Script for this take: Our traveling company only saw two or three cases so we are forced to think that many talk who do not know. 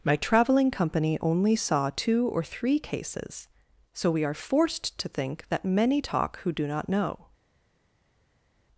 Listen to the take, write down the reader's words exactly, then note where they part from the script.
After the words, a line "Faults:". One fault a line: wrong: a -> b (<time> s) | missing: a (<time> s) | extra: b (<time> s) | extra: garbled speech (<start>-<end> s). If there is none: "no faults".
My traveling company only saw two or three cases so we are forced to think that many talk who do not know.
Faults:
wrong: Our -> My (0.0 s)